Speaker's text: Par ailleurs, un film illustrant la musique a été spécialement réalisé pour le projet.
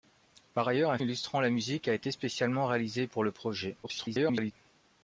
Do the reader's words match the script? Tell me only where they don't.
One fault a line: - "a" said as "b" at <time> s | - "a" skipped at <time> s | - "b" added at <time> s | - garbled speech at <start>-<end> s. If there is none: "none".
- "film" skipped at 1.0 s
- garbled speech at 3.8-4.5 s